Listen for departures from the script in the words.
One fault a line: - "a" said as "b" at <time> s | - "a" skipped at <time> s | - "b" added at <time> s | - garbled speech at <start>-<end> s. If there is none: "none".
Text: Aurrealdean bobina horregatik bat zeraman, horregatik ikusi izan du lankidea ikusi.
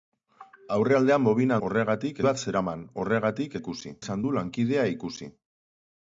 none